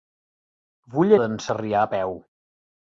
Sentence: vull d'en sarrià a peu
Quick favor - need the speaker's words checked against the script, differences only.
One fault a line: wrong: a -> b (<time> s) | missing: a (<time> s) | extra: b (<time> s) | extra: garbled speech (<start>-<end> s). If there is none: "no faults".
no faults